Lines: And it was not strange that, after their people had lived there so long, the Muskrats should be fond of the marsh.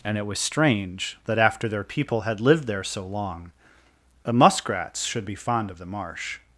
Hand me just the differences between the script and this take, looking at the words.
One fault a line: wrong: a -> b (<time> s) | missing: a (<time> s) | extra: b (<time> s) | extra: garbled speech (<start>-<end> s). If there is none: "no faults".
missing: not (0.4 s)